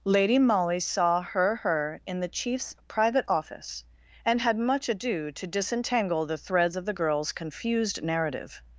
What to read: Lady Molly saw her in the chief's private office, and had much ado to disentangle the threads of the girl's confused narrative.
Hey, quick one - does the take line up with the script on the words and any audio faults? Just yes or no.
no